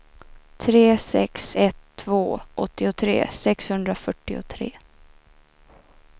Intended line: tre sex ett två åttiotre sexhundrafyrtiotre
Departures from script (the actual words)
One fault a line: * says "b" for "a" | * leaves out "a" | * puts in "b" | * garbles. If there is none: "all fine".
all fine